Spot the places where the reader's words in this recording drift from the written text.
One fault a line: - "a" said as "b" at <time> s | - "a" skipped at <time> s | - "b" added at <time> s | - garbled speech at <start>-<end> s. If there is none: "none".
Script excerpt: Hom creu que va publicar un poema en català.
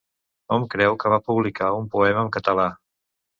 none